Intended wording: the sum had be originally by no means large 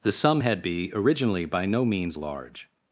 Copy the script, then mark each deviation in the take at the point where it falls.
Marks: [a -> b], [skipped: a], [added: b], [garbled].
the sum had be originally by no means large